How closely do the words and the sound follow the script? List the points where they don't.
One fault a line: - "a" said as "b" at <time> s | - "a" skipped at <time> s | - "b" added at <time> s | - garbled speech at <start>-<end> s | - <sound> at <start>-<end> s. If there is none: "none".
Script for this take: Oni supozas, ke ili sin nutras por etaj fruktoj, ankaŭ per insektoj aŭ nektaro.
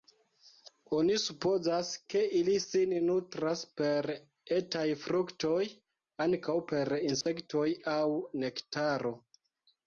- "por" said as "per" at 3.8 s
- dropout at 7.2-7.3 s